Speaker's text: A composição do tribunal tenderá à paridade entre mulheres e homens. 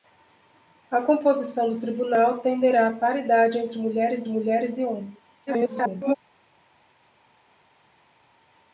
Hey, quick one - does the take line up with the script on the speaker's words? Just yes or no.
no